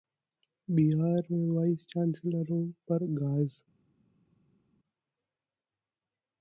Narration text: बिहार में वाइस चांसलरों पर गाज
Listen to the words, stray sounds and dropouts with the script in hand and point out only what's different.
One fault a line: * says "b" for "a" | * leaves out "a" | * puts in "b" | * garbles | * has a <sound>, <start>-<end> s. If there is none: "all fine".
all fine